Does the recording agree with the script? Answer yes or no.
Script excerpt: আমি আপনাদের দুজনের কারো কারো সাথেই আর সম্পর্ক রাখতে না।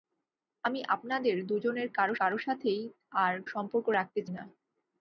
yes